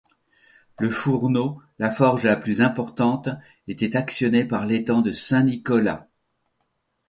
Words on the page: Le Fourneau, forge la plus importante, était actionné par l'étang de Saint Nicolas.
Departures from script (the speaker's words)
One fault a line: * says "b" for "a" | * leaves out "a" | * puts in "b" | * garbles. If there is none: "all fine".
* puts in "la"